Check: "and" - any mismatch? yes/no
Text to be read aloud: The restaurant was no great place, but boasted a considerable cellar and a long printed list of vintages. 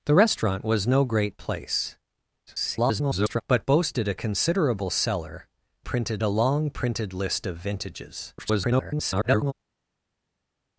yes